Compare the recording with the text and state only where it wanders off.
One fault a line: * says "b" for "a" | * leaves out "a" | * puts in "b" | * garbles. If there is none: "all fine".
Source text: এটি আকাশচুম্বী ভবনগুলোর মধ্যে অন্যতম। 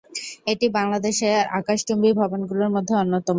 * puts in "বাংলাদেশের"